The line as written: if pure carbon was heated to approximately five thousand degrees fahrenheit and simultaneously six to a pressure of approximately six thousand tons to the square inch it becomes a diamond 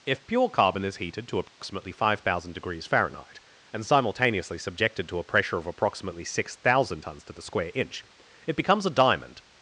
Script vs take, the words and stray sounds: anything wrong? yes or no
yes